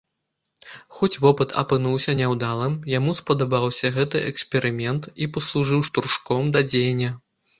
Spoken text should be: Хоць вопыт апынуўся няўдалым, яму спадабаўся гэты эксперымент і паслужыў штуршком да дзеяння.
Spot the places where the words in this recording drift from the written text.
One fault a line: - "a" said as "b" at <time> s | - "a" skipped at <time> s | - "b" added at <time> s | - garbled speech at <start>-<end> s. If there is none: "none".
none